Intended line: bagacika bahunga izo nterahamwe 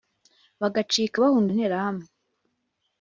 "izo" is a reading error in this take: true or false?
true